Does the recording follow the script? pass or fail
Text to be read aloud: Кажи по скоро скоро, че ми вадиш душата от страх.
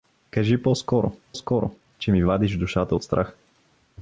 pass